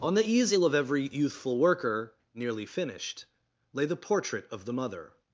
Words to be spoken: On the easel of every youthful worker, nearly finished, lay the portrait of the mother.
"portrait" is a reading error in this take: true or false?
false